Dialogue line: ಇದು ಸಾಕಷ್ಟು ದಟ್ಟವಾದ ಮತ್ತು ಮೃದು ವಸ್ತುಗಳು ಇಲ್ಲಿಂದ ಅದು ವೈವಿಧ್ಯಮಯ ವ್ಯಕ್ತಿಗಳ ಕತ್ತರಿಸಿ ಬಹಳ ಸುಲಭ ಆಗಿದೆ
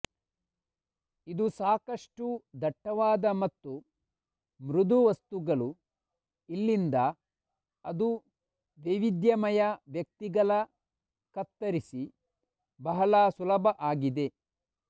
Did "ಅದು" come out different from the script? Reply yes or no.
no